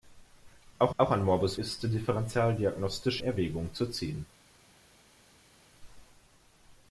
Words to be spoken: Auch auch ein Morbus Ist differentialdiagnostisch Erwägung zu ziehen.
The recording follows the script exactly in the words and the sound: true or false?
true